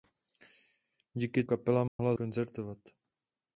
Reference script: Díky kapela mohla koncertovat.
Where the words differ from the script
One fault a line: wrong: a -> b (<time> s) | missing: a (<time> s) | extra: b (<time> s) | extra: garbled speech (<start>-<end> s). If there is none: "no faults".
no faults